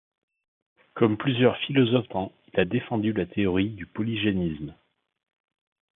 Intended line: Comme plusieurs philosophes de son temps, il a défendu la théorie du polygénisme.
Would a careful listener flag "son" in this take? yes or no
yes